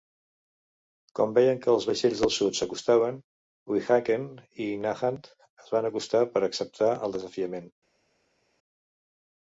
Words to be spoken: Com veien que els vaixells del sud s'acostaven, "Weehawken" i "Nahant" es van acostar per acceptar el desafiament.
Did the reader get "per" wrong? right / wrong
right